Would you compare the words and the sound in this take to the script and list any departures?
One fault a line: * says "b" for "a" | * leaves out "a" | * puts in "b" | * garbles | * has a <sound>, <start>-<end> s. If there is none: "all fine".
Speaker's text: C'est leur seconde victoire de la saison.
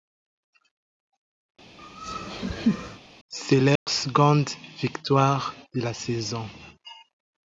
* has a laugh, 1.8-3.0 s
* has a dropout, 3.8-3.9 s